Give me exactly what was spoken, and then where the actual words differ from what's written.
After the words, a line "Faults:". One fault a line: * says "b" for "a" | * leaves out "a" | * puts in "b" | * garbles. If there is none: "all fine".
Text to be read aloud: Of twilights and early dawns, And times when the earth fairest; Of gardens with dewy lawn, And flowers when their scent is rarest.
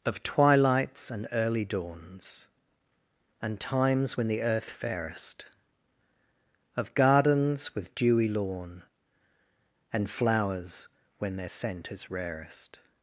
Of twilights and early dawns, And times when the earth fairest; Of gardens with dewy lawn, And flowers when their scent is rarest.
Faults:
all fine